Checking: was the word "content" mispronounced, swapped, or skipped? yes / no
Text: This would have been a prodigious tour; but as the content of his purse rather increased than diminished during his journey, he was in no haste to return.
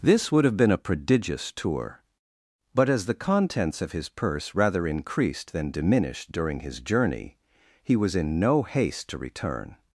yes